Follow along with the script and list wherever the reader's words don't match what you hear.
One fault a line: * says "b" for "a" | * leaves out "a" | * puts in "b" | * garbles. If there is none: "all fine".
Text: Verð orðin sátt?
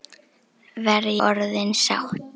all fine